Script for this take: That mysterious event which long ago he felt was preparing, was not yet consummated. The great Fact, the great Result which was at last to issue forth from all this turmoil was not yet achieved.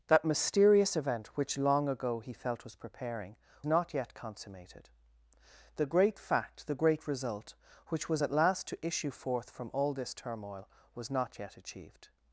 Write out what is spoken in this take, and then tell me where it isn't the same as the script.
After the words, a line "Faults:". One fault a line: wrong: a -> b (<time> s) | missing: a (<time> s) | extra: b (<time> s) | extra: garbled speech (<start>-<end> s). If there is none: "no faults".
That mysterious event which long ago he felt was preparing, not yet consummated. The great Fact, the great Result which was at last to issue forth from all this turmoil was not yet achieved.
Faults:
missing: was (3.4 s)